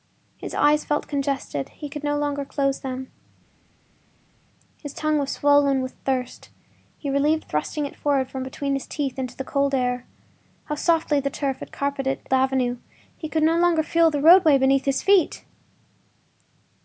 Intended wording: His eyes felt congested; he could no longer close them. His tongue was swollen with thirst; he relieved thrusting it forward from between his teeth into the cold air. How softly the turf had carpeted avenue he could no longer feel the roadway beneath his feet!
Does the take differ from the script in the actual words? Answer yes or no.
no